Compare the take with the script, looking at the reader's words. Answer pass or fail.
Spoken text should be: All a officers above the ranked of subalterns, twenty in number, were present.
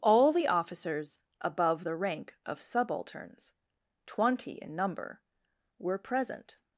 fail